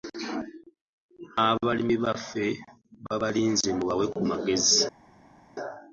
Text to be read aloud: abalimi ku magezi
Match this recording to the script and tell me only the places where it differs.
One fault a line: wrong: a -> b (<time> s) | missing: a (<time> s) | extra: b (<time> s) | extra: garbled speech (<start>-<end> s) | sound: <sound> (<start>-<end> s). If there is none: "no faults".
extra: baffe babalinze mubawe (2.0 s)